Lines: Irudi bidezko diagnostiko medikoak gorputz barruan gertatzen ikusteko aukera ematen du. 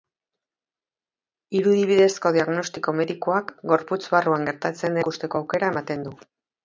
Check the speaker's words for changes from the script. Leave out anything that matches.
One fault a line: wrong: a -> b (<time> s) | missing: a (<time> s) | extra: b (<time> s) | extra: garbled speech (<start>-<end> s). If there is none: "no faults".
no faults